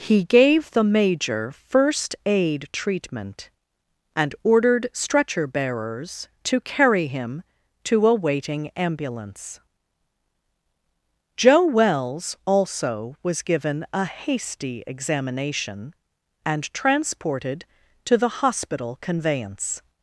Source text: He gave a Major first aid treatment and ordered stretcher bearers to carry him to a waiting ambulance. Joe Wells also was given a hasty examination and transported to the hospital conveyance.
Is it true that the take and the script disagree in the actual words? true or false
true